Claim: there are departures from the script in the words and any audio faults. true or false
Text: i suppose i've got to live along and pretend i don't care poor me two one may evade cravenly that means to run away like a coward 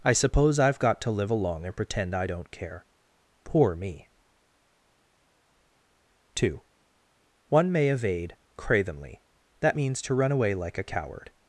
false